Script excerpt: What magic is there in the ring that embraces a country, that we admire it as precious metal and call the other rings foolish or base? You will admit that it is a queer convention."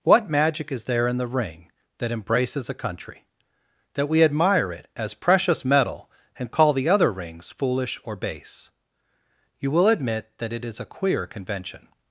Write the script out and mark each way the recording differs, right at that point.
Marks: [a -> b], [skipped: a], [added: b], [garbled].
What magic is there in the ring that embraces a country, that we admire it as precious metal and call the other rings foolish or base? You will admit that it is a queer convention."